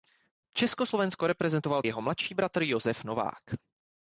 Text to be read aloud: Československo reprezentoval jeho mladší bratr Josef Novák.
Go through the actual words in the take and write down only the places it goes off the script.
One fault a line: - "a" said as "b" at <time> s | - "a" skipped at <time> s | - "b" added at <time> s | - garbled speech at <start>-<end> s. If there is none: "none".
none